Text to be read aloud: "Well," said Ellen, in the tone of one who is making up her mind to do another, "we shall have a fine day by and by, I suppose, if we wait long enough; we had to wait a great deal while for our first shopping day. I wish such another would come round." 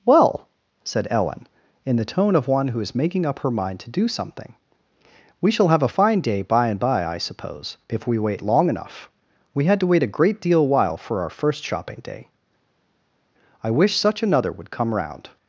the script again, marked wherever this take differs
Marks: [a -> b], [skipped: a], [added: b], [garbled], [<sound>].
"Well," said Ellen, in the tone of one who is making up her mind to do [another, -> something] "we shall have a fine day by and by, I suppose, if we wait long enough; we had to wait a great deal while for our first shopping day. I wish such another would come round."